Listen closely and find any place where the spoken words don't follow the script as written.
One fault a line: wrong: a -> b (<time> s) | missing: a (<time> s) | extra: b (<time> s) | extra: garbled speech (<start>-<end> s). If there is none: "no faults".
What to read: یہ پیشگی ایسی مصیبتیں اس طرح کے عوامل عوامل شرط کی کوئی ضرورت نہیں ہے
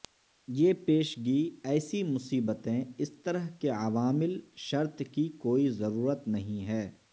missing: عوامل (4.4 s)